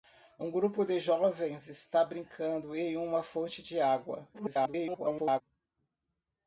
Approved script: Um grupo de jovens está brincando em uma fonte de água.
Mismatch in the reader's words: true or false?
true